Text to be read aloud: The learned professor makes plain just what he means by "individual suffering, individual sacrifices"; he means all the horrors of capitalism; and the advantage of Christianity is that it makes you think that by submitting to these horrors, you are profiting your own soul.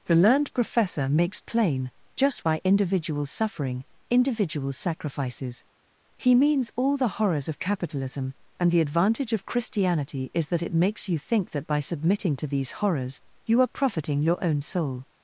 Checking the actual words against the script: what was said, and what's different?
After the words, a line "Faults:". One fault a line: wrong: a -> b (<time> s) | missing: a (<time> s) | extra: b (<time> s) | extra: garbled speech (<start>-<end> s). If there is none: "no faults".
The learned professor makes plain just by "individual suffering, individual sacrifices"; he means all the horrors of capitalism; and the advantage of Christianity is that it makes you think that by submitting to these horrors, you are profiting your own soul.
Faults:
missing: what he means (2.4 s)